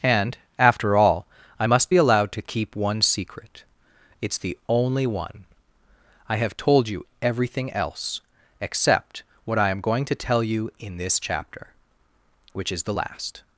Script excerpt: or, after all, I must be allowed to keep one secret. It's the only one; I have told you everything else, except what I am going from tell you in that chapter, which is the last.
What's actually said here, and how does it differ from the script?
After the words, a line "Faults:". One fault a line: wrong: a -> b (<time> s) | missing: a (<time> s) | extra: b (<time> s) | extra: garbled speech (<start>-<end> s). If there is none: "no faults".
and, after all, I must be allowed to keep one secret. It's the only one; I have told you everything else, except what I am going to tell you in this chapter, which is the last.
Faults:
wrong: or -> and (0.0 s)
wrong: from -> to (10.1 s)
wrong: that -> this (11.0 s)